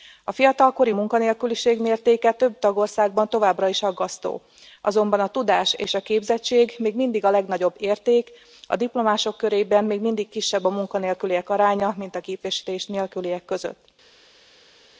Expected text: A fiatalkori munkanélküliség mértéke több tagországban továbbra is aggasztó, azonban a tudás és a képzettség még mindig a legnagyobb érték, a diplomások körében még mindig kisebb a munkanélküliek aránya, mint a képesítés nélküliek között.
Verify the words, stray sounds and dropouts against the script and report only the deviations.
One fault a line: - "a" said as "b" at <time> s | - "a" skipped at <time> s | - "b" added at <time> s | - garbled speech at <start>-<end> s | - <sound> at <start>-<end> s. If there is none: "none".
none